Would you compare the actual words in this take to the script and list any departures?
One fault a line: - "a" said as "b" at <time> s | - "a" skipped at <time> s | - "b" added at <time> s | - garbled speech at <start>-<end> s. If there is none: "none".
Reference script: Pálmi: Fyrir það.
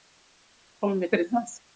none